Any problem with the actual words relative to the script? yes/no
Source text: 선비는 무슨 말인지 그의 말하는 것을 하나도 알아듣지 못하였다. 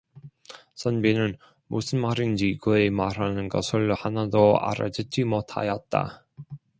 no